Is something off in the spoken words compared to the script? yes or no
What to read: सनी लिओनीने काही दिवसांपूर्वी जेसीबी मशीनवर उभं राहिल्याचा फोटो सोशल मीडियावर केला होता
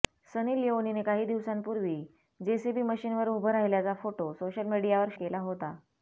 no